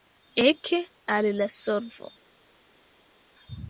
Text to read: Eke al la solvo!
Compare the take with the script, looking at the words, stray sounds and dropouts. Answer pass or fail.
pass